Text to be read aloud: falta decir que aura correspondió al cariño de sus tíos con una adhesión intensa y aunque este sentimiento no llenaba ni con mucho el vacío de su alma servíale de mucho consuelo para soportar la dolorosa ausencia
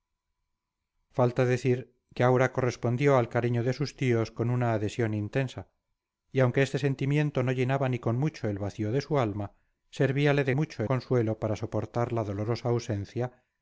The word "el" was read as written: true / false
true